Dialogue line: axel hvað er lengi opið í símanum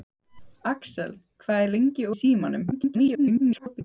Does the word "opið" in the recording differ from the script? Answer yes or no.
yes